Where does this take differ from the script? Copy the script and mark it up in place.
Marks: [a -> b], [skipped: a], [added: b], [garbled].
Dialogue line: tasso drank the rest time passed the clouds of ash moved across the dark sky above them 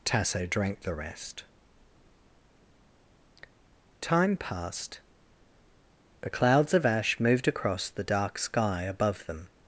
tasso drank the rest time passed the clouds of ash moved across the dark sky above them